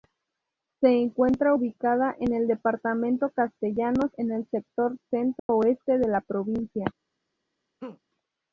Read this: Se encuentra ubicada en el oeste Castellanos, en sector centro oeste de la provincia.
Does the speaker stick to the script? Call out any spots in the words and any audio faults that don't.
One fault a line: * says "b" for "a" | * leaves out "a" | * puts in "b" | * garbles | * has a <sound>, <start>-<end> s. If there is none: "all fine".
* says "departamento" for "oeste"
* puts in "el"
* has a dropout, 5.4-5.5 s
* has a laugh, 7.8-8.0 s